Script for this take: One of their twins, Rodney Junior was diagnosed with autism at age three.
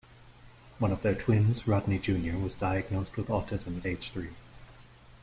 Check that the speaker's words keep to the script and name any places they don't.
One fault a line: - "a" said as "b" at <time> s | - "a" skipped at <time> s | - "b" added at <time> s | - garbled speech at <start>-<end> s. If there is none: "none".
none